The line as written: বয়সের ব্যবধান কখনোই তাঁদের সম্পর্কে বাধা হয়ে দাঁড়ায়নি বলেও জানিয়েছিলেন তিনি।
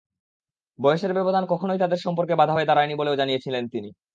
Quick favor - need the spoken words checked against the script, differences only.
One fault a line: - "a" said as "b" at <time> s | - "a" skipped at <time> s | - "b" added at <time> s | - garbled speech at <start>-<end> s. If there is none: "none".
none